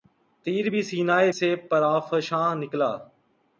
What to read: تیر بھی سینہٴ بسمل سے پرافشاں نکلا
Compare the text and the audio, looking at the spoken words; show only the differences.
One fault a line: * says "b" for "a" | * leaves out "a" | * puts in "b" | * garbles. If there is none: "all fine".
* leaves out "بسمل"